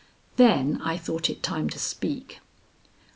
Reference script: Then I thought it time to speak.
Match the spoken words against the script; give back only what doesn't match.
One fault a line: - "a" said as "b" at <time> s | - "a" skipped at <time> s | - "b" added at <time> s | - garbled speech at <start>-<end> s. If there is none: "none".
none